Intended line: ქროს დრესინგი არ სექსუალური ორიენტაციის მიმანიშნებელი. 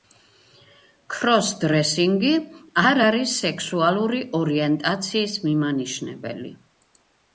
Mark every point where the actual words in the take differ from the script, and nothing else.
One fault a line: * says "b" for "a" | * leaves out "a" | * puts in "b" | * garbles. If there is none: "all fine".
* puts in "არის"